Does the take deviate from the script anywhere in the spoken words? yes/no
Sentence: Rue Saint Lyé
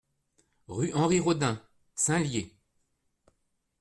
yes